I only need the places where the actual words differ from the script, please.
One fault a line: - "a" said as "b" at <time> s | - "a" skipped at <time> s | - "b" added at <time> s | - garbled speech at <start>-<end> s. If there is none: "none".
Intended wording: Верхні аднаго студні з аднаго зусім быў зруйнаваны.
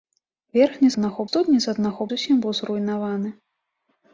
none